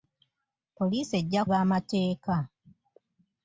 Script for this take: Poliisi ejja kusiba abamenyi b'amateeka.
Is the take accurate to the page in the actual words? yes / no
no